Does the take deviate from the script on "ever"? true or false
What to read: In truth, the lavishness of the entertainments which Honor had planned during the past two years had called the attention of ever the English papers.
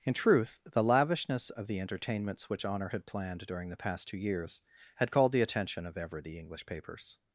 false